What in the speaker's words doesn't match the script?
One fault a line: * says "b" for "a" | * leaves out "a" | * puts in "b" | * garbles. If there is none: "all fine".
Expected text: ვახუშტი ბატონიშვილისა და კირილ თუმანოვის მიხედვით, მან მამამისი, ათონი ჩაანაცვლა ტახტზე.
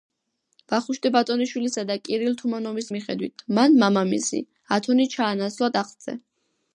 all fine